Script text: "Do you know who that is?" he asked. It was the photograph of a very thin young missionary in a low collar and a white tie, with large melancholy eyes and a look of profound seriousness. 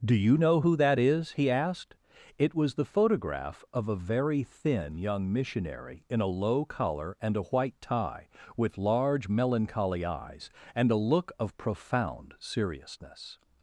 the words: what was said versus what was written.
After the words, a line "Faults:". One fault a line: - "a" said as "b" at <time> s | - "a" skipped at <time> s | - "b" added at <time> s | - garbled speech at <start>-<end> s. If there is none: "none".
"Do you know who that is?" he asked. It was the photograph of a very thin young missionary in a low collar and a white tie, with large melancholy eyes and a look of profound seriousness.
Faults:
none